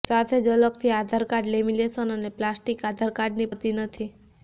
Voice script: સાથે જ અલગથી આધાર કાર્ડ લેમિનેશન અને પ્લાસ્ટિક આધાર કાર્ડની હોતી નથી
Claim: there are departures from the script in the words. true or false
false